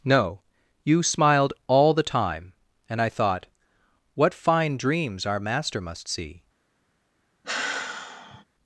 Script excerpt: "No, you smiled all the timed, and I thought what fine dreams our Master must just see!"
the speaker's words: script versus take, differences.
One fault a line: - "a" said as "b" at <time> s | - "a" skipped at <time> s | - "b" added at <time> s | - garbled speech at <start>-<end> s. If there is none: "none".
- "timed" said as "time" at 2.0 s
- "just" skipped at 6.1 s